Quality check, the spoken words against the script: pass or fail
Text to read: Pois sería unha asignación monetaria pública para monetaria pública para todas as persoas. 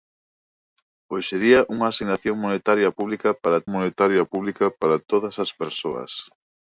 pass